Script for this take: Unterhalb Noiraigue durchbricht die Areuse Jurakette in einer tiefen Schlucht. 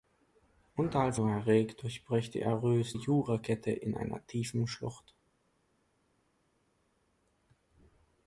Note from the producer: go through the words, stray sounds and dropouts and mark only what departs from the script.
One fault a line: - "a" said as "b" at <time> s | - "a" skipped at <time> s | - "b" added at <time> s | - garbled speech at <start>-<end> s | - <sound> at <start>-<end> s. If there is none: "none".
none